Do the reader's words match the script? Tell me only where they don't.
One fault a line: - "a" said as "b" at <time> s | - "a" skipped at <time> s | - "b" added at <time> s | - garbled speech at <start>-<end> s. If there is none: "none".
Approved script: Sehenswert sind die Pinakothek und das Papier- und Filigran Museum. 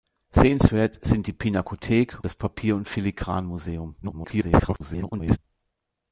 - "und" skipped at 2.2 s
- garbled speech at 4.0-5.4 s